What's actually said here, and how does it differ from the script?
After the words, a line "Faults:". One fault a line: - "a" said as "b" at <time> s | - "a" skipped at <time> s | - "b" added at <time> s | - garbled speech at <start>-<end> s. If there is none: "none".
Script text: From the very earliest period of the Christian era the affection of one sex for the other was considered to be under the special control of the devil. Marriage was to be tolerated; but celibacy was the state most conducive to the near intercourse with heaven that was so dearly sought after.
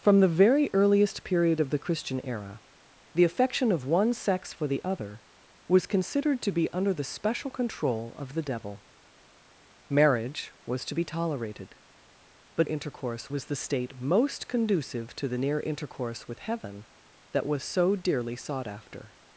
From the very earliest period of the Christian era the affection of one sex for the other was considered to be under the special control of the devil. Marriage was to be tolerated; but intercourse was the state most conducive to the near intercourse with heaven that was so dearly sought after.
Faults:
- "celibacy" said as "intercourse" at 12.6 s